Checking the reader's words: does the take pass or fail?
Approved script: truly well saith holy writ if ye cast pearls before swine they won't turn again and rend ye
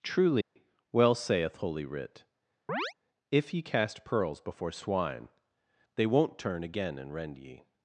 pass